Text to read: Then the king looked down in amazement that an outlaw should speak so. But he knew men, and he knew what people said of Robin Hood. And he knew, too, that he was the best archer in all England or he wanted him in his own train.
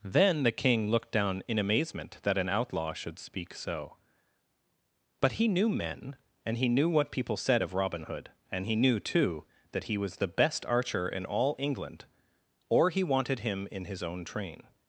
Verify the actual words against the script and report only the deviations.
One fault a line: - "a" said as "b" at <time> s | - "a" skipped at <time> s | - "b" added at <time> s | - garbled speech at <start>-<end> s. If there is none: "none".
none